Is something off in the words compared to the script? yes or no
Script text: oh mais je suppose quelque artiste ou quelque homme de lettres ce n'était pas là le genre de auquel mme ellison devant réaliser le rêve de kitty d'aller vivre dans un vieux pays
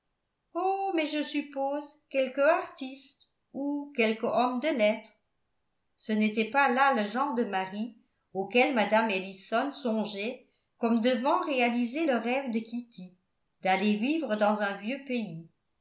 yes